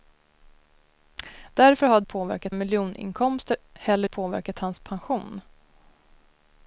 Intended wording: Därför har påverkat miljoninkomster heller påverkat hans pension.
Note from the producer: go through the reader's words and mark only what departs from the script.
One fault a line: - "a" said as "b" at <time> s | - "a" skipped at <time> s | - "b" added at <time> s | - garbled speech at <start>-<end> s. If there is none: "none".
none